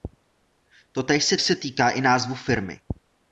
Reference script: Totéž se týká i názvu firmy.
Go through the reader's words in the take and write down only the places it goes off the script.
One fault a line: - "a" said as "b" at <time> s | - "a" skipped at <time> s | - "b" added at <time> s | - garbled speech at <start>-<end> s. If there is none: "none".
- "se" added at 1.4 s